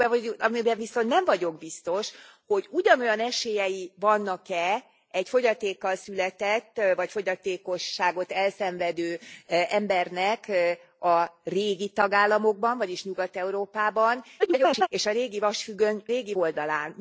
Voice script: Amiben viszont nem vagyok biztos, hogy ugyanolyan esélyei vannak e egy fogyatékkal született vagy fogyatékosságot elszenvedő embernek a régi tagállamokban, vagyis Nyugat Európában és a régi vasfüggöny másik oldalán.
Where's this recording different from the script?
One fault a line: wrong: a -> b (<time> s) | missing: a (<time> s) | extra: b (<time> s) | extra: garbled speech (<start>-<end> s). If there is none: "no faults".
extra: garbled speech (14.4-14.9 s)
wrong: másik -> régi (16.1 s)